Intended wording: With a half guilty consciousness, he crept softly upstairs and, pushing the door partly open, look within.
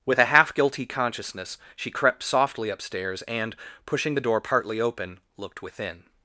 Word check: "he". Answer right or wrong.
wrong